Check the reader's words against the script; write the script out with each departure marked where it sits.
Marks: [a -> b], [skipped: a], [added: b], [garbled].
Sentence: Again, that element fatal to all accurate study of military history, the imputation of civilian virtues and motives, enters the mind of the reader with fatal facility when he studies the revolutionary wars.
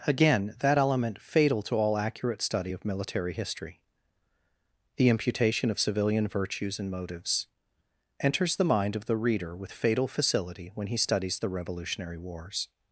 Again, that element fatal to all accurate study of military history, the imputation of civilian virtues and motives, enters the mind of the reader with fatal facility when he studies the revolutionary wars.